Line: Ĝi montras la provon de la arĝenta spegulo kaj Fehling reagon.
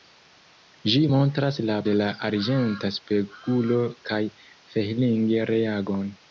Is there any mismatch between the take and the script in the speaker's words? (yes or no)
yes